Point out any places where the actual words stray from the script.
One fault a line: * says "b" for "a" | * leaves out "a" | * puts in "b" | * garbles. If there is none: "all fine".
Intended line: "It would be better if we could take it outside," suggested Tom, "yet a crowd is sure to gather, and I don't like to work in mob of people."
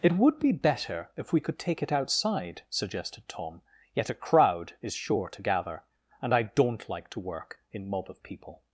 all fine